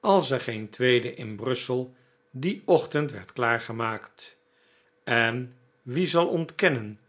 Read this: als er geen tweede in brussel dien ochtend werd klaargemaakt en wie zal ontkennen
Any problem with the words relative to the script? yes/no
no